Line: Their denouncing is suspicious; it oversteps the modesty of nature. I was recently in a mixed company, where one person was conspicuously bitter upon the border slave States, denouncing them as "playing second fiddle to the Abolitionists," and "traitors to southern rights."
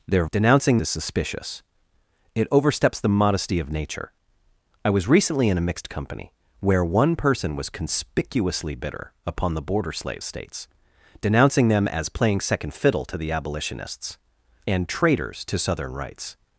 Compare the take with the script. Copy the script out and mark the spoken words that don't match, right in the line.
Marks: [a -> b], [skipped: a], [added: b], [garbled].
Their denouncing is suspicious; it oversteps the modesty of nature. I was recently in a mixed company, where one person was conspicuously bitter upon the border slave States, denouncing them as "playing second fiddle to the Abolitionists," and "traitors to southern rights."